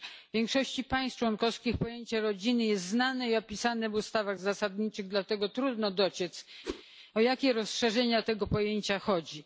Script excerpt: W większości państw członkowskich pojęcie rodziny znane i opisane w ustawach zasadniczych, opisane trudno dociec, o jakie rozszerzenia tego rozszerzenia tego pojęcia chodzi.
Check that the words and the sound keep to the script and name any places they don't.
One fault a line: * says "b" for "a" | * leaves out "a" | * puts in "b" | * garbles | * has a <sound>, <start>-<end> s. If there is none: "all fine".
* puts in "jest"
* says "dlatego" for "opisane"
* has a whoosh, 6.6-6.8 s
* leaves out "rozszerzenia tego"